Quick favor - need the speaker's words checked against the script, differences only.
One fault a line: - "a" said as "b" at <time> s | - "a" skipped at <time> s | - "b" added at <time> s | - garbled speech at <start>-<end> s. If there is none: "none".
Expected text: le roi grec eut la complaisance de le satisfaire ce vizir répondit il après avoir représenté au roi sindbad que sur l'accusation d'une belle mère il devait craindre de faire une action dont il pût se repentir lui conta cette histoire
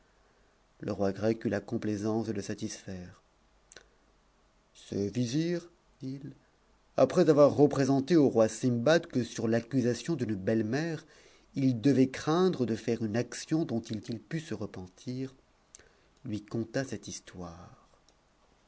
- "répondit" skipped at 5.7 s
- "il" added at 14.0 s